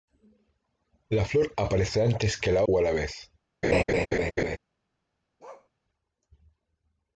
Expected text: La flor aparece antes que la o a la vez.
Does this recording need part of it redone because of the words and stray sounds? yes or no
yes